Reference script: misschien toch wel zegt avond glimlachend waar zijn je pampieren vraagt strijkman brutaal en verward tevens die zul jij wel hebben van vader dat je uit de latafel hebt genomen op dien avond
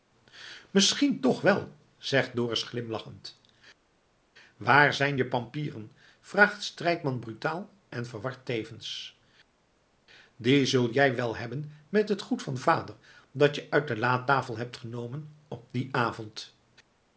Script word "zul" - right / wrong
right